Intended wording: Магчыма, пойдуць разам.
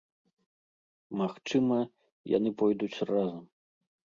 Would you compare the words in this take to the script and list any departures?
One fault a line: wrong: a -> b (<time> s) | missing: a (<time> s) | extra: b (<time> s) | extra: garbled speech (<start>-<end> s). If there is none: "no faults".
extra: яны (2.4 s)